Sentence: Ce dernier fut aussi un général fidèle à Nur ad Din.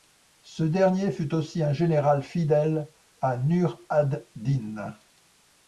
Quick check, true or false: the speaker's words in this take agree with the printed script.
true